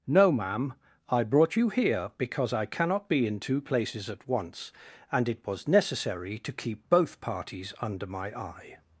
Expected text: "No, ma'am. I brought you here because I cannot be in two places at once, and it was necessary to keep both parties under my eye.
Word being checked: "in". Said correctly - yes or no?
yes